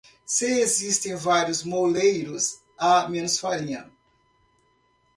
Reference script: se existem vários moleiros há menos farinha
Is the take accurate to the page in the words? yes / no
yes